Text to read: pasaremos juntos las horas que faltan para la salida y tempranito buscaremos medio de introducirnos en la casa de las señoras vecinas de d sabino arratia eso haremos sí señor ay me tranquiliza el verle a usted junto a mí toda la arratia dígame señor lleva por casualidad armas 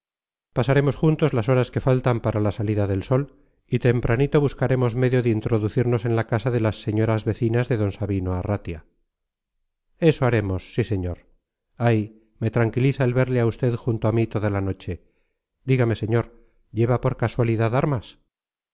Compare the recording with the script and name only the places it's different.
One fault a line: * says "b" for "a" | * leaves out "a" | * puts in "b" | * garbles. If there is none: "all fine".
* puts in "del sol"
* says "noche" for "arratia"